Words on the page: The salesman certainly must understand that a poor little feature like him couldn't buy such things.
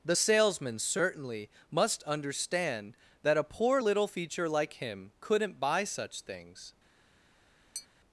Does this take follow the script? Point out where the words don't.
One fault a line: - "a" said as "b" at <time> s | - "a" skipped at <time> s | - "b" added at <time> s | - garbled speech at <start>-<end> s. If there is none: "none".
none